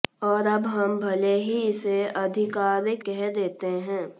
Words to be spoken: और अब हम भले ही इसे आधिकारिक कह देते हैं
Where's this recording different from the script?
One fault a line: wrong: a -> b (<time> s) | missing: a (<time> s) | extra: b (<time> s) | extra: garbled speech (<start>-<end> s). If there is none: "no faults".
no faults